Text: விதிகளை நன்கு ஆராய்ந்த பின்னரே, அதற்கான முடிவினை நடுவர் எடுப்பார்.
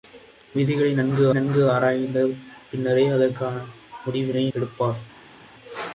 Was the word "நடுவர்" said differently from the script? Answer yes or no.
yes